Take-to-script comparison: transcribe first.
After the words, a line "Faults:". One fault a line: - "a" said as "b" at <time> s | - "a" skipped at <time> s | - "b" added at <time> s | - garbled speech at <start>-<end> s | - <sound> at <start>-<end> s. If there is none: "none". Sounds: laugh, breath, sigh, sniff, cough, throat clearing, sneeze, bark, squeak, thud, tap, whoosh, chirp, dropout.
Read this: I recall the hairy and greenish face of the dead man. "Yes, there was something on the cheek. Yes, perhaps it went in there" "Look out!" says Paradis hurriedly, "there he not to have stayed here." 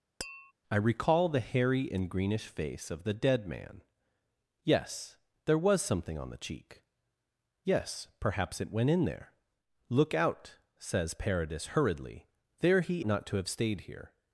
I recall the hairy and greenish face of the dead man. "Yes, there was something on the cheek. Yes, perhaps it went in there" "Look out!" says Paradis hurriedly, "there he not to have stayed here."
Faults:
- tap at 0.2-0.5 s